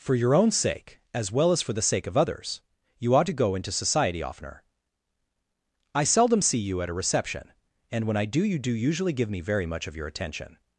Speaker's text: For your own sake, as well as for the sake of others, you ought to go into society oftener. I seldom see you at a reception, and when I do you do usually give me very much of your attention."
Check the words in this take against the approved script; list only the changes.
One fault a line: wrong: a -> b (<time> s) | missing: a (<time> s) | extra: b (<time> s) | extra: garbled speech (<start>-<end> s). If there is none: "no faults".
no faults